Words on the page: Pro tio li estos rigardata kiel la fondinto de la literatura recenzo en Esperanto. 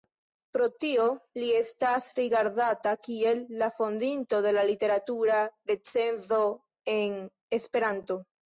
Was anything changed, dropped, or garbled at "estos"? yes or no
yes